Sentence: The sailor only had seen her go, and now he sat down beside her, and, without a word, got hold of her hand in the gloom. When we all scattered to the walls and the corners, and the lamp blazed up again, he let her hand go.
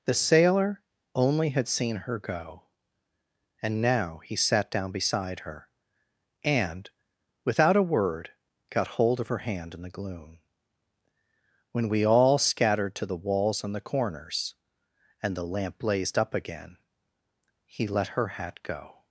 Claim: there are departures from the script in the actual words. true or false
true